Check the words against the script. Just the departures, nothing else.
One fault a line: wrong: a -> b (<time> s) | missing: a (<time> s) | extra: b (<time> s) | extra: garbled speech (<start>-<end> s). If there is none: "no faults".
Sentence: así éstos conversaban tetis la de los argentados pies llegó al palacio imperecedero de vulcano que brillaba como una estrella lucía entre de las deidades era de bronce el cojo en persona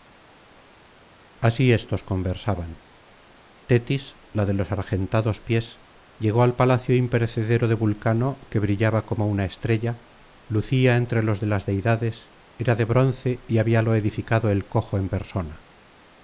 extra: los (11.2 s)
extra: y habíalo edificado (13.5 s)